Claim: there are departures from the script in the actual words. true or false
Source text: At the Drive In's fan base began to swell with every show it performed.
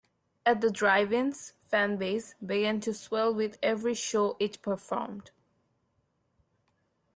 false